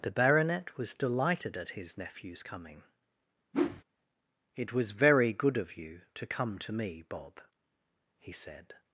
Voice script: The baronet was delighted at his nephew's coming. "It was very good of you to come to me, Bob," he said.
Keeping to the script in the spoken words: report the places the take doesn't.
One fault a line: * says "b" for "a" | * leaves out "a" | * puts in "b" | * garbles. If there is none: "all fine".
all fine